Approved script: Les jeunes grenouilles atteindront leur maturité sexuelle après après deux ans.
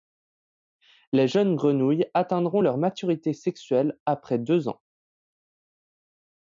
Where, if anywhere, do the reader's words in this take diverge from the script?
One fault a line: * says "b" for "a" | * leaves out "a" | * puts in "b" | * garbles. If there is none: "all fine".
* leaves out "après"